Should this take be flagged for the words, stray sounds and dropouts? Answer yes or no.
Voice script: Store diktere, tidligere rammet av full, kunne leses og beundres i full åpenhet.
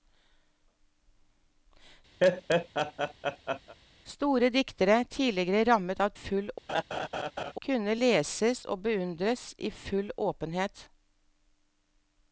yes